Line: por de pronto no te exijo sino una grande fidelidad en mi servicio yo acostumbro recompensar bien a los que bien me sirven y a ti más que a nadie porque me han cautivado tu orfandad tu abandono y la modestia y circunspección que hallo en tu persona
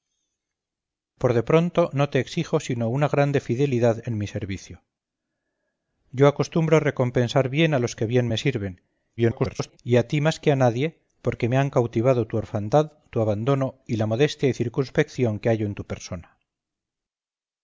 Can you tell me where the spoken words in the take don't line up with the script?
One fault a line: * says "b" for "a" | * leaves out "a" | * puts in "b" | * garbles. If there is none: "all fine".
* garbles